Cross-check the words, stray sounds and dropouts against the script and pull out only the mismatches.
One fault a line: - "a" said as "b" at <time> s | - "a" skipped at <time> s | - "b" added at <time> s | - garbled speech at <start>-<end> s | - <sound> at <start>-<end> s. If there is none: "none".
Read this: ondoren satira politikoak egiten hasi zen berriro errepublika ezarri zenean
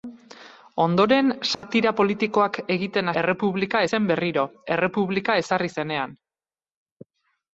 - dropout at 1.5-1.6 s
- "hasi" said as "errepublika" at 3.2 s